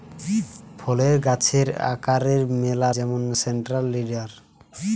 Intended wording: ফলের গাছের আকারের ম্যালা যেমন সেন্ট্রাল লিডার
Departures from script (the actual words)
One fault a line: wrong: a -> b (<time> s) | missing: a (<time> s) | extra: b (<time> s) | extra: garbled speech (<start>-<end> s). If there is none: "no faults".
no faults